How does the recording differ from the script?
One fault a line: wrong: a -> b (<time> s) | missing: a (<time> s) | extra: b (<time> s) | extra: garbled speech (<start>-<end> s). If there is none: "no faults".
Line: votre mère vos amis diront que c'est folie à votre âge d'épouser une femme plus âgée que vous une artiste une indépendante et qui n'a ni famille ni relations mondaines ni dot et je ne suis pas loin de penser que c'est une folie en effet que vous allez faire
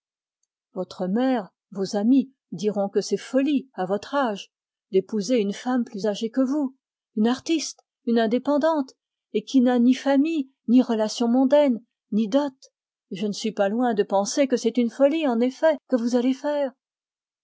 no faults